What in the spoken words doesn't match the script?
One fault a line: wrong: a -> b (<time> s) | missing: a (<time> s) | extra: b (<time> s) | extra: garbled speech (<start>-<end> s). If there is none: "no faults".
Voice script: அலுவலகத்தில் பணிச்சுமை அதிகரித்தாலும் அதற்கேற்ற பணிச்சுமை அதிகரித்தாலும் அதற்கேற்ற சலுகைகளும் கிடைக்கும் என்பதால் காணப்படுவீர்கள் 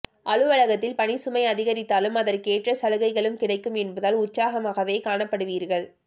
missing: பணிச்சுமை அதிகரித்தாலும் அதற்கேற்ற (2.7 s)
extra: உற்சாகமாகவே (4.2 s)